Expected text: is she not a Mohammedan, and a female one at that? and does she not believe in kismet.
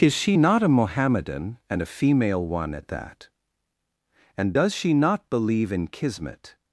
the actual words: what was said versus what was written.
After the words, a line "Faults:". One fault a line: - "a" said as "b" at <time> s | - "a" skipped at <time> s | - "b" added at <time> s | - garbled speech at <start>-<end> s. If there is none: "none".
is she not a Mohammedan, and a female one at that? and does she not believe in kismet.
Faults:
none